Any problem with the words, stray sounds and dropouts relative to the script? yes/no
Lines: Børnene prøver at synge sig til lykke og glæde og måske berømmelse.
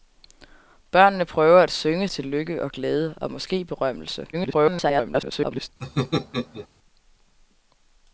yes